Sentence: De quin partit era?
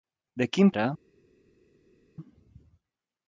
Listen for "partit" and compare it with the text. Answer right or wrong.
wrong